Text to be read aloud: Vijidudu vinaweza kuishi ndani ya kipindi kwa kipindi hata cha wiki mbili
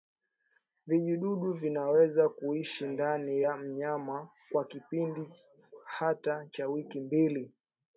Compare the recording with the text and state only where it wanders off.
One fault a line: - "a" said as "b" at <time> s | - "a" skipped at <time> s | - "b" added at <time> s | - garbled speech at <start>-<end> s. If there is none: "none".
- "kipindi" said as "mnyama" at 3.6 s